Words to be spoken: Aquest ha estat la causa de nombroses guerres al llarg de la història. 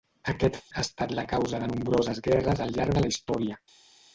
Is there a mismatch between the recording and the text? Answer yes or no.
no